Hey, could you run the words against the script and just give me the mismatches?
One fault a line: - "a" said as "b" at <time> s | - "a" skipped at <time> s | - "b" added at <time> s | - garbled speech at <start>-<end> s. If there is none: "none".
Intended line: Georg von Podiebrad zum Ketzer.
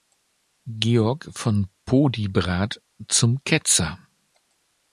none